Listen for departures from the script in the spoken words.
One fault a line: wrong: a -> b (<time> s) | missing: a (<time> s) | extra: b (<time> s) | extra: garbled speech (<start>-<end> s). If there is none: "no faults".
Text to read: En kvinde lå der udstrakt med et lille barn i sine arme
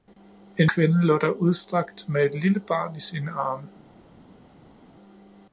no faults